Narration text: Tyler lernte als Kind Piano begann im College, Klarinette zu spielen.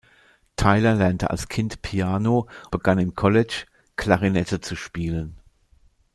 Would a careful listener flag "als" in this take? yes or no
no